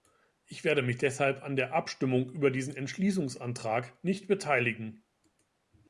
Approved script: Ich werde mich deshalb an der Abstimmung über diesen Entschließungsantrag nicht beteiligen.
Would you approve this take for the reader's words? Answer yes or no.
yes